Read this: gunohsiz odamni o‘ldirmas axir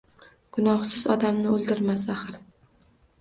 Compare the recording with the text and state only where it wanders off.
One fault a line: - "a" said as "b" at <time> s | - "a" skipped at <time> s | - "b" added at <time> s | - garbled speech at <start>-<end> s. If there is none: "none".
none